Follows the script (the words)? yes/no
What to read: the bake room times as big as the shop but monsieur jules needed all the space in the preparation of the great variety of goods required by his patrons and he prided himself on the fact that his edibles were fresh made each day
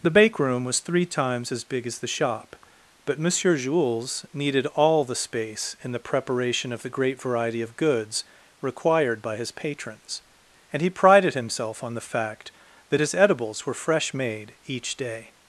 no